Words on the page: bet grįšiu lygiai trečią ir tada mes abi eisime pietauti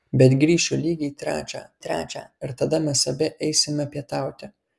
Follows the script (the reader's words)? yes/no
no